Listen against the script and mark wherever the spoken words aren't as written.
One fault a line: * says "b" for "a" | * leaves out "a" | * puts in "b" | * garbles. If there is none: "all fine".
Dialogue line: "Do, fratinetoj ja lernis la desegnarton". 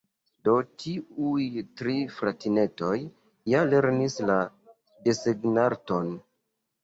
* puts in "tiuj tri"